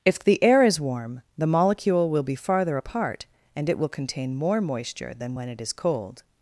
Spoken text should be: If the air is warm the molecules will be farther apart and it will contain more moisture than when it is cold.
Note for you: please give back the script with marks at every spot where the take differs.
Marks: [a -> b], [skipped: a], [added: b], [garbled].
If the air is warm the [molecules -> molecule] will be farther apart and it will contain more moisture than when it is cold.